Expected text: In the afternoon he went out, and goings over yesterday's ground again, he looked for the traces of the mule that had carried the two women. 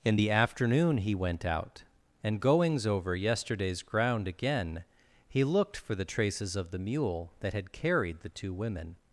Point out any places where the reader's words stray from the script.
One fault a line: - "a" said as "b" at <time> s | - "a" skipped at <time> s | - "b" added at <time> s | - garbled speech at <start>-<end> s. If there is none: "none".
none